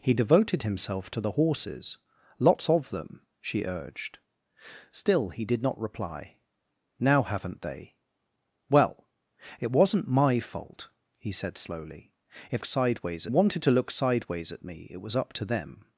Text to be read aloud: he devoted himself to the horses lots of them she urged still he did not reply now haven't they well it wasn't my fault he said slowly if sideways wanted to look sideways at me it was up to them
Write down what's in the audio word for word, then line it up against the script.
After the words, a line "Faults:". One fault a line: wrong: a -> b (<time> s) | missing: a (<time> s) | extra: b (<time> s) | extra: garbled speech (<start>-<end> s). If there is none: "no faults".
he devoted himself to the horses lots of them she urged still he did not reply now haven't they well it wasn't my fault he said slowly if sideways wanted to look sideways at me it was up to them
Faults:
no faults